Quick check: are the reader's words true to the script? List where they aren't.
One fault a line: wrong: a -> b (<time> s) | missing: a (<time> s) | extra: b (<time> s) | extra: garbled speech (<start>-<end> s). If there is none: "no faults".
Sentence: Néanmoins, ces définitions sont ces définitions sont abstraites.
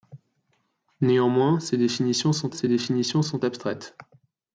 no faults